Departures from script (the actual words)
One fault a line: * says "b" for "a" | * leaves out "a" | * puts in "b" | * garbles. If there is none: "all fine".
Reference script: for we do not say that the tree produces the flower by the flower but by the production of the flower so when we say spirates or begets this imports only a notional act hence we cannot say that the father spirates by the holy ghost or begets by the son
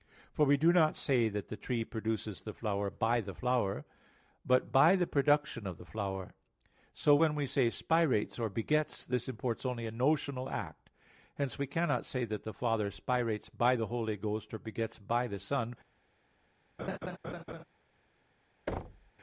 all fine